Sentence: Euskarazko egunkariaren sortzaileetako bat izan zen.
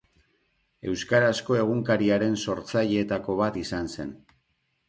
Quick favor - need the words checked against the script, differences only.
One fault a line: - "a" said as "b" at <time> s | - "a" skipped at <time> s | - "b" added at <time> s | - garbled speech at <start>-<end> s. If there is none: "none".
none